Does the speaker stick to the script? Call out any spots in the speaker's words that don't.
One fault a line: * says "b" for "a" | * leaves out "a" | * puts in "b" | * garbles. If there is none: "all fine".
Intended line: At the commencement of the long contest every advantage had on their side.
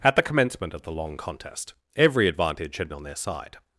all fine